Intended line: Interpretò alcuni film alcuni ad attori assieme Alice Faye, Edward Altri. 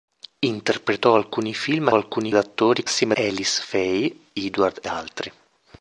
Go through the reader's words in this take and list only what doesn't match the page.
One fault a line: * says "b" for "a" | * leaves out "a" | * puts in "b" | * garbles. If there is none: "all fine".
all fine